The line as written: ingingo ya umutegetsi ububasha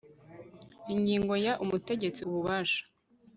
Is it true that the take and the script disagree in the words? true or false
false